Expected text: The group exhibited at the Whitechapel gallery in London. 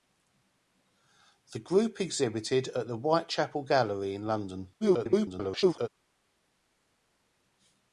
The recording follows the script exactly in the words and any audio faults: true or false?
false